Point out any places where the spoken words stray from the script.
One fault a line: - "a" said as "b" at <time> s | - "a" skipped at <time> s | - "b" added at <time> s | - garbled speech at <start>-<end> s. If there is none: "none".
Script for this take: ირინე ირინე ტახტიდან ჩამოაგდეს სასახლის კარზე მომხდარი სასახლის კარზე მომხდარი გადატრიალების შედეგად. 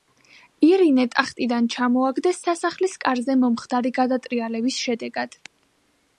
- "ირინე" skipped at 1.0 s
- "სასახლის კარზე მომხდარი" skipped at 3.9 s